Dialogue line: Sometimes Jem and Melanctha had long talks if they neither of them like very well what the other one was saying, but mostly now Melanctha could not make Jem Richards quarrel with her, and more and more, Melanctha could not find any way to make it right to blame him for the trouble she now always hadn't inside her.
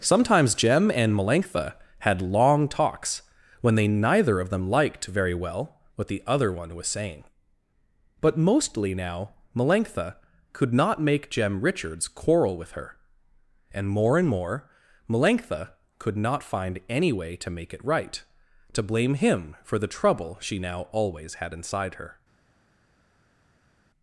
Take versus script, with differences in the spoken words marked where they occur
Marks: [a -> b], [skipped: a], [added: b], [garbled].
Sometimes Jem and Melanctha had long talks [if -> when] they neither of them [like -> liked] very well what the other one was saying, but mostly now Melanctha could not make Jem Richards quarrel with her, and more and more, Melanctha could not find any way to make it right to blame him for the trouble she now always [hadn't -> had] inside her.